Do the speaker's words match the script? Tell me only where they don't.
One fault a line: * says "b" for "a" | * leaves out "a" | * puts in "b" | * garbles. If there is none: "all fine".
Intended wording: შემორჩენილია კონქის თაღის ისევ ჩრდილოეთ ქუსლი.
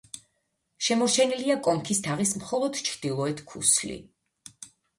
* says "მხოლოდ" for "ისევ"